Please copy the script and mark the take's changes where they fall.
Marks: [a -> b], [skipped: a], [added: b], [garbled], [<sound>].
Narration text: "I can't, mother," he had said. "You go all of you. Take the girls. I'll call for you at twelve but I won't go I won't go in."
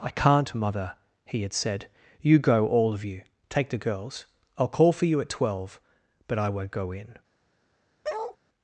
"I can't, mother," he had said. "You go all of you. Take the girls. I'll call for you at twelve but I won't go [skipped: I won't go] in." [bark]